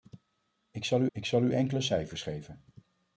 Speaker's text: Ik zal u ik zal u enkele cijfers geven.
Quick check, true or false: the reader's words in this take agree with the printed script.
true